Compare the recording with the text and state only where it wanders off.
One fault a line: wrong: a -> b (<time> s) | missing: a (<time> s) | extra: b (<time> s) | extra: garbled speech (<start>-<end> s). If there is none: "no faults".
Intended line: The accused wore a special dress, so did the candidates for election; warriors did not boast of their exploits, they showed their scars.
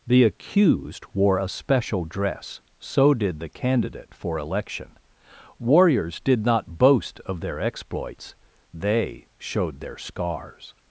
wrong: candidates -> candidate (3.5 s)